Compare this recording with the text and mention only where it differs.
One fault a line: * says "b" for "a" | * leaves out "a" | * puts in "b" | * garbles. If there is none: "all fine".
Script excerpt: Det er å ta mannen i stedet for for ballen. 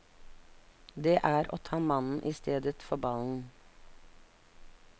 * leaves out "for"